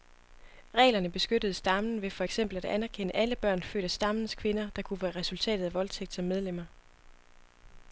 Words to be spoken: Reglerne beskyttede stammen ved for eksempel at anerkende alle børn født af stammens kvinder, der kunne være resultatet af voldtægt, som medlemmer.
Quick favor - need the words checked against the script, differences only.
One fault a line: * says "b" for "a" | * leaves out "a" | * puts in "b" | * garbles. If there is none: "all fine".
all fine